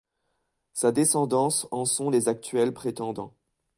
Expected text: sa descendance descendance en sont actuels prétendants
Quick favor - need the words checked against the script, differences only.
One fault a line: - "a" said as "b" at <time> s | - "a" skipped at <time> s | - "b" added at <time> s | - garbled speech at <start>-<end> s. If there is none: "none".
- "descendance" skipped at 1.7 s
- "les" added at 2.1 s